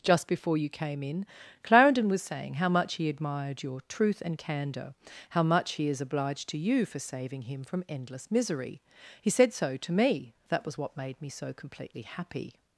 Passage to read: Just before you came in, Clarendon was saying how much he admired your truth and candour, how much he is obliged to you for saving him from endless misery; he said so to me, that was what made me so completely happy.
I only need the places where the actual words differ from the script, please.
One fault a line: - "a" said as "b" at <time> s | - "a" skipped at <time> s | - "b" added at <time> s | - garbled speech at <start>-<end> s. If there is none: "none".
none